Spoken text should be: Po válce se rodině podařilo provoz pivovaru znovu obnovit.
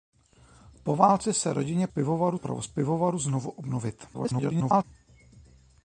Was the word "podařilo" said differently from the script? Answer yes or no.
yes